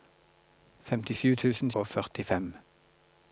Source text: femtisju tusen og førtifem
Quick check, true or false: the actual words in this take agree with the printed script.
true